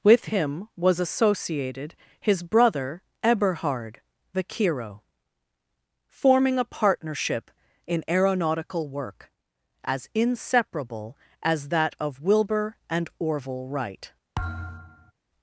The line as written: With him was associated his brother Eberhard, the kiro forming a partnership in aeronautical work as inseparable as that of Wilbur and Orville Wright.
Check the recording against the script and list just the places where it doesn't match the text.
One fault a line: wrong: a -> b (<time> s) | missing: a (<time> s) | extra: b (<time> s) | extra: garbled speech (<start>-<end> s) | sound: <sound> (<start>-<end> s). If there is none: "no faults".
sound: thud (14.4-15.1 s)